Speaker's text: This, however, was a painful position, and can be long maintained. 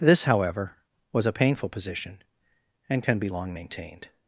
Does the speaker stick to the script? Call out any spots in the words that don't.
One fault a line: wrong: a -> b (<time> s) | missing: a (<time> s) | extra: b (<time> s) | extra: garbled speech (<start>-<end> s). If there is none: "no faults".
no faults